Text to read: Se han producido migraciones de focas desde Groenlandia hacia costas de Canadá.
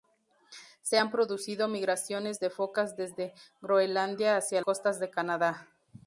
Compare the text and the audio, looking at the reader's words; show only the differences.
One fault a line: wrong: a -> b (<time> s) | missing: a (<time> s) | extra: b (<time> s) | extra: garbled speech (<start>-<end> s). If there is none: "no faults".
no faults